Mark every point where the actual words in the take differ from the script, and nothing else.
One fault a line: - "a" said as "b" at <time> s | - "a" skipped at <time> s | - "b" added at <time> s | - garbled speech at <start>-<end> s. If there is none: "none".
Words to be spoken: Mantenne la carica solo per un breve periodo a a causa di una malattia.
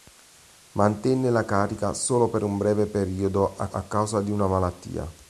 none